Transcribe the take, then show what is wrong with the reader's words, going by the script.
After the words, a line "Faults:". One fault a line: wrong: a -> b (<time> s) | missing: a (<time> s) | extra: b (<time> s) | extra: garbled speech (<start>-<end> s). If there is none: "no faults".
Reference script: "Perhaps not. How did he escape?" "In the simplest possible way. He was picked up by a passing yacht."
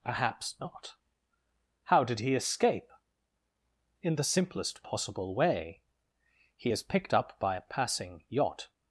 "Perhaps not. How did he escape?" "In the simplest possible way. He is picked up by a passing yacht."
Faults:
wrong: was -> is (6.7 s)